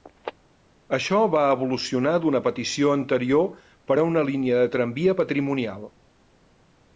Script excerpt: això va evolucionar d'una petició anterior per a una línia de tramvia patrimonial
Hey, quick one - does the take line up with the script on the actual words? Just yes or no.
yes